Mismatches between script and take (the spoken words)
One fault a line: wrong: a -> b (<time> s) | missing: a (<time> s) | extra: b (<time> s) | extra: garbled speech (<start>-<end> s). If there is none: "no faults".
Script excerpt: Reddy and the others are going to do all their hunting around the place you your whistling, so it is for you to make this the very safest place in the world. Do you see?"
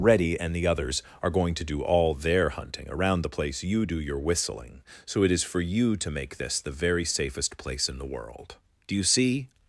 extra: do (3.8 s)